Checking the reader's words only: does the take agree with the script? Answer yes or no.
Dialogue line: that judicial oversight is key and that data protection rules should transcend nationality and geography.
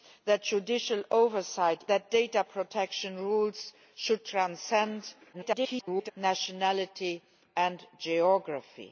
no